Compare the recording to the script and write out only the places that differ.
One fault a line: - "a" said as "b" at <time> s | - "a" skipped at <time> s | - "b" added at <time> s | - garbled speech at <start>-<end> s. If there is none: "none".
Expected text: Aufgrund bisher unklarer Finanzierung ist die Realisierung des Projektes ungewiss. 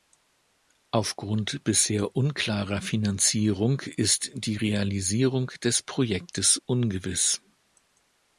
none